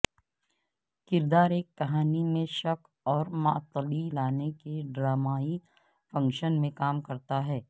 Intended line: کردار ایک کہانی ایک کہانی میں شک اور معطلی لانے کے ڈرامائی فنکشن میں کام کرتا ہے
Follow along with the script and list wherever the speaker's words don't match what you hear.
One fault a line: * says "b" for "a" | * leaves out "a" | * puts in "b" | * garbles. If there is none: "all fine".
* leaves out "ایک کہانی"